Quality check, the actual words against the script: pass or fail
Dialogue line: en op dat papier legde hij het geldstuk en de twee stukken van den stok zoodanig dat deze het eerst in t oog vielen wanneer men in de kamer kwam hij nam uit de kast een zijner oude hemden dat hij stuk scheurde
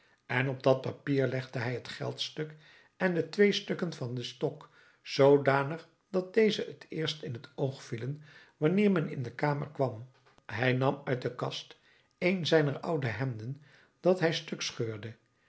pass